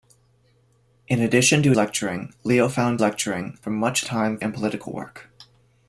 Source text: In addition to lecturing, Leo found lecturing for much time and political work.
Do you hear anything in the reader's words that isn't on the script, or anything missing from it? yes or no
no